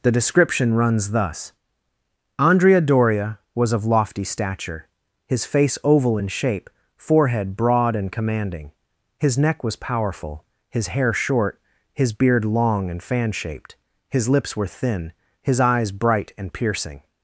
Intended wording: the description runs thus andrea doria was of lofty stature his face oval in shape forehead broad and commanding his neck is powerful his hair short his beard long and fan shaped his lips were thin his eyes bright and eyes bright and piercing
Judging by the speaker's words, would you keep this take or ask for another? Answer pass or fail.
fail